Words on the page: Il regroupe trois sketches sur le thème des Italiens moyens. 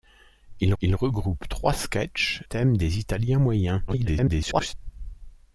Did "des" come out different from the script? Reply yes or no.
no